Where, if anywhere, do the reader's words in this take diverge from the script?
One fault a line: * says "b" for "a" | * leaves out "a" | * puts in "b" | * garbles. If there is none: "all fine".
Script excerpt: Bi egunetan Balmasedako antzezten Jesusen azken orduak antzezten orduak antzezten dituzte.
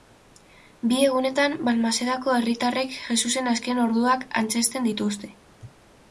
* says "herritarrek" for "antzezten"
* leaves out "orduak antzezten"